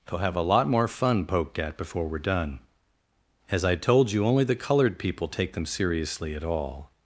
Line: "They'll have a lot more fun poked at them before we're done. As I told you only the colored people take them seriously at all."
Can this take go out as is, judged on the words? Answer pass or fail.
fail